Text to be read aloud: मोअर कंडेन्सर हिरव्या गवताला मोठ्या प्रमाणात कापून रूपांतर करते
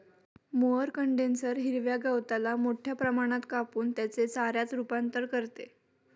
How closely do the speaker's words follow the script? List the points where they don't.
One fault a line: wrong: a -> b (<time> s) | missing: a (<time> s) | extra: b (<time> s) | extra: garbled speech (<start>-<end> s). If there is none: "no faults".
extra: त्याचे चाऱ्यात (3.9 s)